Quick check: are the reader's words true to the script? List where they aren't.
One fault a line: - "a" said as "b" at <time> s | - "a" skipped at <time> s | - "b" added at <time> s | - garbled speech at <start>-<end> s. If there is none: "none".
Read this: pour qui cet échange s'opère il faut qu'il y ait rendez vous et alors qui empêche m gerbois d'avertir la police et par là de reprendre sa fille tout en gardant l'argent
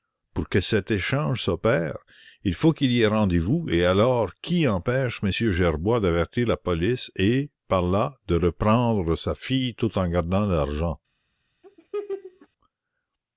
- "qui" said as "que" at 0.5 s